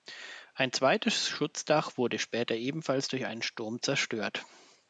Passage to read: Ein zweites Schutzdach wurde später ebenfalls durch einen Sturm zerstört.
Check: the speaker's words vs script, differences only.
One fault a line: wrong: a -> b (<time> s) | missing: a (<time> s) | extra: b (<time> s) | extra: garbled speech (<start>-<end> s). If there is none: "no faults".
no faults